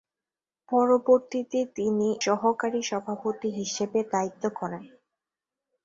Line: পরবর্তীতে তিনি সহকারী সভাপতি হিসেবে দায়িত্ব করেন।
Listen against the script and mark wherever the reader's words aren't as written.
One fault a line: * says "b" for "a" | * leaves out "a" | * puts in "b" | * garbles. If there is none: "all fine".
all fine